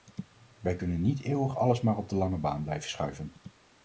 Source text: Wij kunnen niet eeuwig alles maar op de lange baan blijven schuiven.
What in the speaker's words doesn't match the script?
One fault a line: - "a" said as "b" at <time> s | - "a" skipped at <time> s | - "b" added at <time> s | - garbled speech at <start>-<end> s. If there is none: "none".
none